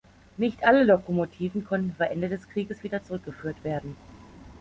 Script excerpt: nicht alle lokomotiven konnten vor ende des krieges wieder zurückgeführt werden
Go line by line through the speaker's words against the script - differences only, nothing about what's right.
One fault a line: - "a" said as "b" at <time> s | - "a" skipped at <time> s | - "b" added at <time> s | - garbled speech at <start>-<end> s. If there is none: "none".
none